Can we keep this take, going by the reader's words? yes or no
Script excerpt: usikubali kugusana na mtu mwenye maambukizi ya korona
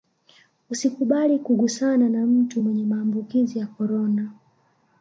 yes